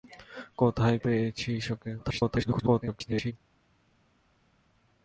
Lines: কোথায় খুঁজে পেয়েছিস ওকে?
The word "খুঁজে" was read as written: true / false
false